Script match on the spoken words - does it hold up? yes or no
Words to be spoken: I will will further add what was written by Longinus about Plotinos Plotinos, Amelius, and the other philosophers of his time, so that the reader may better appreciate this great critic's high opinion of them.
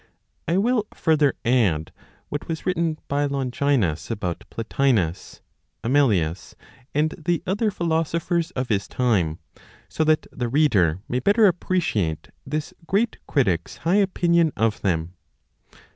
no